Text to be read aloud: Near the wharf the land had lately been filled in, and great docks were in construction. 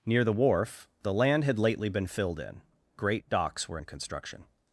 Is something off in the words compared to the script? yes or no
yes